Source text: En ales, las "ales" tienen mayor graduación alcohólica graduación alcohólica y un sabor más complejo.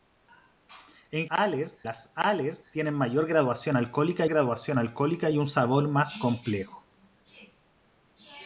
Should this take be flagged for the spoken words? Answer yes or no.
no